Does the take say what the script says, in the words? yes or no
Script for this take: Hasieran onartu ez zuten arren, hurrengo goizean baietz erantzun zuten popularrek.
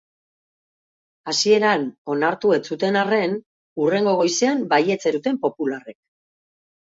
no